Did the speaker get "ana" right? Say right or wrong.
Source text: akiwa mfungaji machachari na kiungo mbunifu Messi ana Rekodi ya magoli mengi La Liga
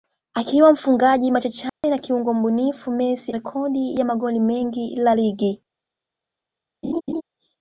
wrong